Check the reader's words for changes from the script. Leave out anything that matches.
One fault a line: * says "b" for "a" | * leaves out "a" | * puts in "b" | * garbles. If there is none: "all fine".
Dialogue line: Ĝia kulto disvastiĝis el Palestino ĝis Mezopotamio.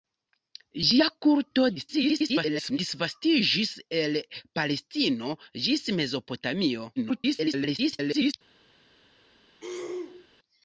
* garbles
* garbles